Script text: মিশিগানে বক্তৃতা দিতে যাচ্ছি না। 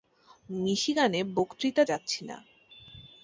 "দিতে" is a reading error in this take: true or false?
true